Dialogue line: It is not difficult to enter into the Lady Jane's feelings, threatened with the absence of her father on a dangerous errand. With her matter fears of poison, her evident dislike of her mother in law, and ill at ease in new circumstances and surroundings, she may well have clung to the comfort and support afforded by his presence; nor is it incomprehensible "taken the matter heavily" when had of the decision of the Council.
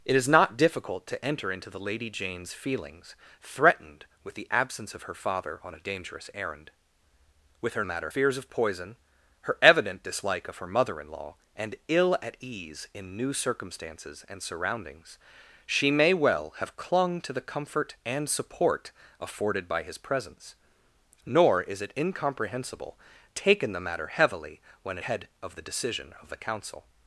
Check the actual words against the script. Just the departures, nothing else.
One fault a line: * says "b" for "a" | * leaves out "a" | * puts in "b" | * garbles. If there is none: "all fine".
all fine